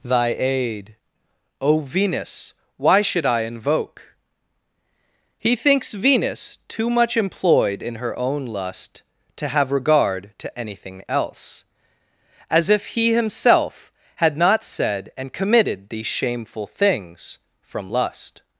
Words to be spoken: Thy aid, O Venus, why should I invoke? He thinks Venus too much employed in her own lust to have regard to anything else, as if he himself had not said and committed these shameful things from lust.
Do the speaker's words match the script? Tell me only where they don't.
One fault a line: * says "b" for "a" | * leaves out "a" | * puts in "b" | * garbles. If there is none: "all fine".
all fine